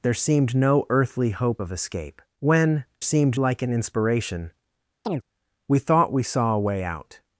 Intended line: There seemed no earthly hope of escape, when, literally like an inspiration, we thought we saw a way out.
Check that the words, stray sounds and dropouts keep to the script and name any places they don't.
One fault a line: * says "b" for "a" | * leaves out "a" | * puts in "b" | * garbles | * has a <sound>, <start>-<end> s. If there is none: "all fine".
* says "seemed" for "literally"
* has a chirp, 5.0-5.2 s